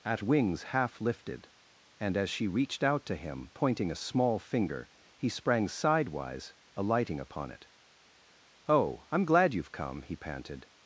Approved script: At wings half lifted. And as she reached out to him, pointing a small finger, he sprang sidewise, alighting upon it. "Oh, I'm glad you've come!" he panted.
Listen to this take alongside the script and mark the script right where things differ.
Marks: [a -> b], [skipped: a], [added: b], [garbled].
At wings half lifted. And as she reached out to him, pointing a small finger, he sprang sidewise, alighting upon it. "Oh, I'm glad you've come!" he panted.